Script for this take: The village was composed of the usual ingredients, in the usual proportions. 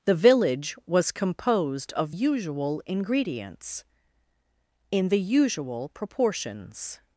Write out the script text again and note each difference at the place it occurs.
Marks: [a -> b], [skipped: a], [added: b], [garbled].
The village was composed of [skipped: the] usual ingredients, in the usual proportions.